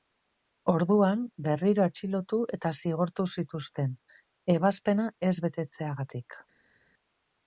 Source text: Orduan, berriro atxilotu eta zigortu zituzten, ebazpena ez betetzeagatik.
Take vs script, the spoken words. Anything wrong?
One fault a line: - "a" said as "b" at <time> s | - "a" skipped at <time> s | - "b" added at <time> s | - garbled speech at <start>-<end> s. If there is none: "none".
none